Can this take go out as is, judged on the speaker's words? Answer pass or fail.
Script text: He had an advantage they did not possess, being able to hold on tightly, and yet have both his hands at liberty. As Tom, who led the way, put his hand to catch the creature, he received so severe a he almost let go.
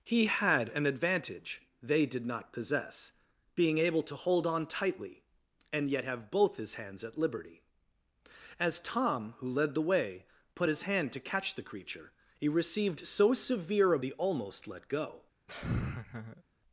pass